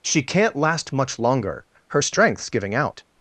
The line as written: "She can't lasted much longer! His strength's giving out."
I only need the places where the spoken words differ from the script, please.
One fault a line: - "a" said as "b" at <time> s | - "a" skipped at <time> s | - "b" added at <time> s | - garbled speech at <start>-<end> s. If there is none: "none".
- "lasted" said as "last" at 0.6 s
- "His" said as "Her" at 1.9 s